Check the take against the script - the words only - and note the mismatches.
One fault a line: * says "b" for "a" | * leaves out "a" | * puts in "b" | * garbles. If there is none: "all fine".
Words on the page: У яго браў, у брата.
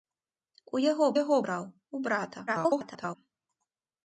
* puts in "яго"
* garbles